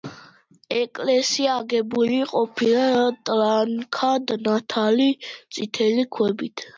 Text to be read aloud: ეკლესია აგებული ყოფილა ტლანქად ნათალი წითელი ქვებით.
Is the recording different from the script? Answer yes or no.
no